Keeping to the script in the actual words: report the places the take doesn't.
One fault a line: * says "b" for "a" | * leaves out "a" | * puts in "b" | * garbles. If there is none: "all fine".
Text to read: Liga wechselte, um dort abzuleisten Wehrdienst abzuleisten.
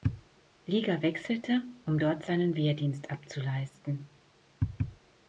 * says "seinen" for "abzuleisten"